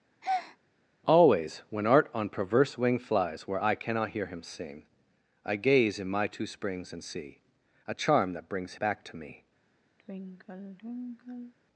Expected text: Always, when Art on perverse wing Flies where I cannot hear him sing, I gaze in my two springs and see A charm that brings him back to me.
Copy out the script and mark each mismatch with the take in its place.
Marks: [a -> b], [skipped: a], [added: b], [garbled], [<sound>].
[breath] Always, when Art on perverse wing Flies where I cannot hear him sing, I gaze in my two springs and see A charm that brings [skipped: him] back to me. [sigh]